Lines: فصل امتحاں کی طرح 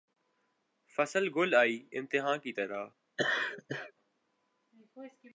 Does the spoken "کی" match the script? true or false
true